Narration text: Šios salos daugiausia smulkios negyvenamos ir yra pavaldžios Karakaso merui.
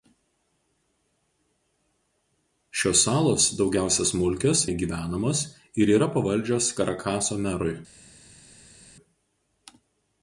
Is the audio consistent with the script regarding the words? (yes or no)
yes